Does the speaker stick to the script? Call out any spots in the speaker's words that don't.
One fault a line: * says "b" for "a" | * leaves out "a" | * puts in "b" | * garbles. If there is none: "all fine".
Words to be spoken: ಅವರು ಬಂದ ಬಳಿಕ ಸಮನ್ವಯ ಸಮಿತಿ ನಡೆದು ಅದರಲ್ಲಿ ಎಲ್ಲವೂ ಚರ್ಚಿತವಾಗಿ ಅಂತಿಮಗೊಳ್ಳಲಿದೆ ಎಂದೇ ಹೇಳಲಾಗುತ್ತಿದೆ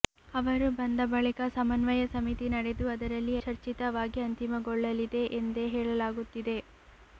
* leaves out "ಎಲ್ಲವೂ"